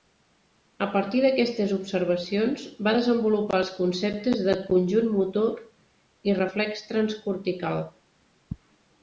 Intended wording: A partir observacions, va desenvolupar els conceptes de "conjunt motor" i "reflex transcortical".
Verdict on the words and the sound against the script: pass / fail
fail